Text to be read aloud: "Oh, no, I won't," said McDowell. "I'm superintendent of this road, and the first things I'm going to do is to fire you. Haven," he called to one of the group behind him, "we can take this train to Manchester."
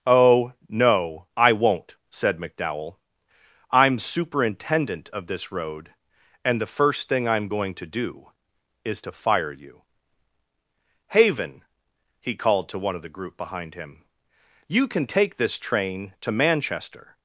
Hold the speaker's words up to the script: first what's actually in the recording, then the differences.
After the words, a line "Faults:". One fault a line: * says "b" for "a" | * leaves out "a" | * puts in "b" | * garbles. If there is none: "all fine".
"Oh, no, I won't," said McDowell. "I'm superintendent of this road, and the first thing I'm going to do is to fire you. Haven," he called to one of the group behind him, "you can take this train to Manchester."
Faults:
* says "thing" for "things"
* says "you" for "we"